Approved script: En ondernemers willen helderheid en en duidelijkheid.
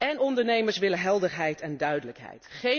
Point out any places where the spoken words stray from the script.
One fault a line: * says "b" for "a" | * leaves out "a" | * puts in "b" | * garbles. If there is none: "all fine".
* leaves out "en"